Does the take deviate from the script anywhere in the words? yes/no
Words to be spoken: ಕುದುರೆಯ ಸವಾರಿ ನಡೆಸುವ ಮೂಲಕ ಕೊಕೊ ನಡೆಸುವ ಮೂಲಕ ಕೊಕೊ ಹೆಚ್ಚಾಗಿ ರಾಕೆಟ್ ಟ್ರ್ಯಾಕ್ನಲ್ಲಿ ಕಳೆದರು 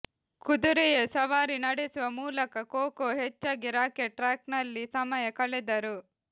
yes